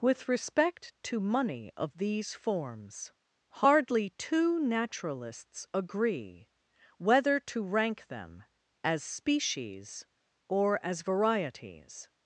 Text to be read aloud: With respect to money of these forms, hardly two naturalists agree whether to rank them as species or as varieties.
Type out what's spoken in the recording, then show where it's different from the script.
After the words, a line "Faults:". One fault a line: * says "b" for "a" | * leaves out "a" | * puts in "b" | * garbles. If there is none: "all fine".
With respect to money of these forms, hardly two naturalists agree whether to rank them as species or as varieties.
Faults:
all fine